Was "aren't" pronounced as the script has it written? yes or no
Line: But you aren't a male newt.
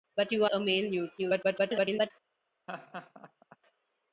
no